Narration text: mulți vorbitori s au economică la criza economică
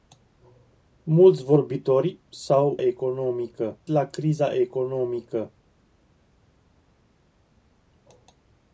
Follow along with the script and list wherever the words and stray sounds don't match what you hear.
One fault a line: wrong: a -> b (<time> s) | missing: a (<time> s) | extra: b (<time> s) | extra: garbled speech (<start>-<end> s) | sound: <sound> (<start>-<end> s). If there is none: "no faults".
no faults